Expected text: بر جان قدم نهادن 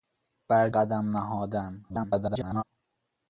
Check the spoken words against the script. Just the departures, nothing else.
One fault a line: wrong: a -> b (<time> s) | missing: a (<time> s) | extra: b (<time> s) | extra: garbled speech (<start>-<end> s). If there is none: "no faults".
missing: جان (0.7 s)
extra: garbled speech (1.9-2.6 s)